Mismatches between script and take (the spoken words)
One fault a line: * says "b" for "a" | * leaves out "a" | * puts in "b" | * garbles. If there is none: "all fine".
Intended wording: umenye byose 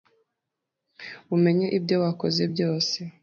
* puts in "ibyo wakoze"